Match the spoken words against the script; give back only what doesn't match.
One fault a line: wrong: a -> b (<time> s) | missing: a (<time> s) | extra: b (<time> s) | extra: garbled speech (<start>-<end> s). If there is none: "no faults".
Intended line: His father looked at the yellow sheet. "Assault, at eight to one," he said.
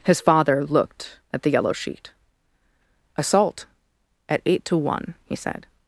no faults